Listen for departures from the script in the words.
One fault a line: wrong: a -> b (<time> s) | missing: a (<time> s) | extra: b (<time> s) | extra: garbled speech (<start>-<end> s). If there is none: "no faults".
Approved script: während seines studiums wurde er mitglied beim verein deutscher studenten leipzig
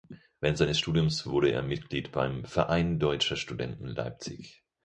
no faults